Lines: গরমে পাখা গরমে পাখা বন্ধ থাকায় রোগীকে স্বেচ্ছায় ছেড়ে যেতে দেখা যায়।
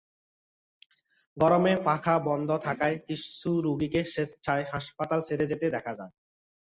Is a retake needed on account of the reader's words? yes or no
yes